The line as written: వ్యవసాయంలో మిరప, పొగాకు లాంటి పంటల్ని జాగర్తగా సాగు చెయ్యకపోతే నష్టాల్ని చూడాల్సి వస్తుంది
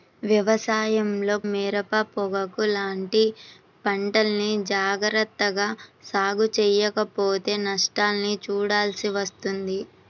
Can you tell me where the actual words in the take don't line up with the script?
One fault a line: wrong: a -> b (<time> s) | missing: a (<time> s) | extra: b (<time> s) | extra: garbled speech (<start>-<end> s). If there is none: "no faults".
no faults